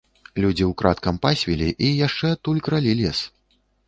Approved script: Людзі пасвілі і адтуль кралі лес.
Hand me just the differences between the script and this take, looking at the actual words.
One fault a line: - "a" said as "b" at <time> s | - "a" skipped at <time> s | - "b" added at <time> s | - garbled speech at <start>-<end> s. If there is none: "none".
- "ўкрадкам" added at 0.7 s
- "яшчэ" added at 2.1 s